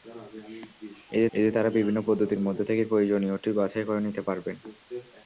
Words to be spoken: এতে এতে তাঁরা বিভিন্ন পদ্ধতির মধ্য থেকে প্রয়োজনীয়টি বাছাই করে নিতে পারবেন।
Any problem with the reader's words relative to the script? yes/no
no